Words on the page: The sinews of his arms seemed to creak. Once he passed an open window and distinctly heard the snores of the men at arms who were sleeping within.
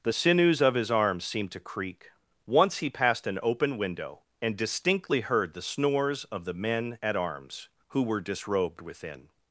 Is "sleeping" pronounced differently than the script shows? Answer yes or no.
yes